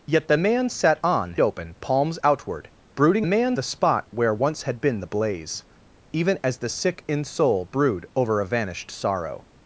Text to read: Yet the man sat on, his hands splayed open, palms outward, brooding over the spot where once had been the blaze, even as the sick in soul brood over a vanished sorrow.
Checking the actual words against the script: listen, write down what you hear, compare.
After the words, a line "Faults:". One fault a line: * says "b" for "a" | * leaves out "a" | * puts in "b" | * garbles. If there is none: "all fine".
Yet the man sat on, open, palms outward, brooding man the spot where once had been the blaze, even as the sick in soul brood over a vanished sorrow.
Faults:
* leaves out "his hands splayed"
* says "man" for "over"